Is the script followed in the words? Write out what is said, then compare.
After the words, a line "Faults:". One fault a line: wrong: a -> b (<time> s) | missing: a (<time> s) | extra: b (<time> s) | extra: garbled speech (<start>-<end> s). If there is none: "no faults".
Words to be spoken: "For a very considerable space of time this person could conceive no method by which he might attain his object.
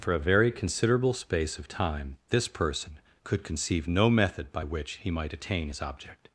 "For a very considerable space of time this person could conceive no method by which he might attain his object.
Faults:
no faults